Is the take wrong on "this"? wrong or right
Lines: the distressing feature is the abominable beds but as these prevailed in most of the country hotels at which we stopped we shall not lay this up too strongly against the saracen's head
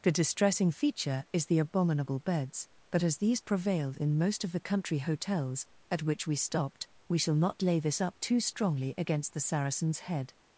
right